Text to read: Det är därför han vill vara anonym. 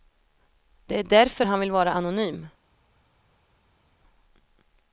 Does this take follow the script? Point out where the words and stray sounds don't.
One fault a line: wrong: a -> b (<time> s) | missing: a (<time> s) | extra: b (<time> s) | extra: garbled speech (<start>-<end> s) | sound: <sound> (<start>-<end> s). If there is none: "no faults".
no faults